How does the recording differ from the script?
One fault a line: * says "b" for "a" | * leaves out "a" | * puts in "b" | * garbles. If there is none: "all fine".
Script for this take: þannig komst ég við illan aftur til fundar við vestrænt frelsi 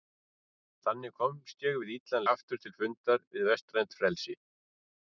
all fine